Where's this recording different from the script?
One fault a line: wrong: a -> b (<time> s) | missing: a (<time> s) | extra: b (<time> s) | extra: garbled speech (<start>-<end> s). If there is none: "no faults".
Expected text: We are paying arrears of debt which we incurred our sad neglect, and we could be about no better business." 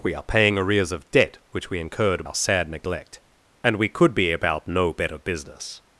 no faults